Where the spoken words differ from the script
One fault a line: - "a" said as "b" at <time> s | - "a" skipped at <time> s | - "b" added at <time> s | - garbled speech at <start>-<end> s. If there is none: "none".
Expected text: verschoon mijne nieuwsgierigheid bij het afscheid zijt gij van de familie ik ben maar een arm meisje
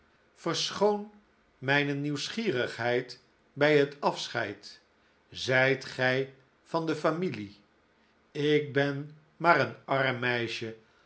none